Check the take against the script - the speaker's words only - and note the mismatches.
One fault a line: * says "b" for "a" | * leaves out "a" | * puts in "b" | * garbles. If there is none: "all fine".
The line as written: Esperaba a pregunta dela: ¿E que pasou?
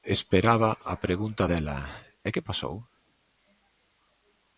all fine